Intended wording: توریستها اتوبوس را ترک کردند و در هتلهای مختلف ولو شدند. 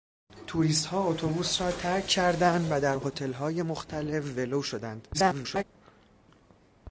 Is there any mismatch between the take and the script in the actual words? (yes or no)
yes